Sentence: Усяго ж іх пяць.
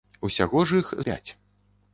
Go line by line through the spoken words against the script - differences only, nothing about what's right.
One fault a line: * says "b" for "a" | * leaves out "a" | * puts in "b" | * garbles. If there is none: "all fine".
all fine